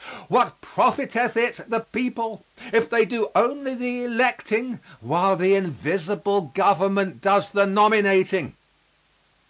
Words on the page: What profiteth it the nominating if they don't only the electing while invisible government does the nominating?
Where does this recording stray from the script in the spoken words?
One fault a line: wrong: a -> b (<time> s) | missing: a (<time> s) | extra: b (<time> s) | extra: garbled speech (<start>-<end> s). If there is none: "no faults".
wrong: nominating -> people (1.8 s)
wrong: don't -> do (3.0 s)
extra: the (5.4 s)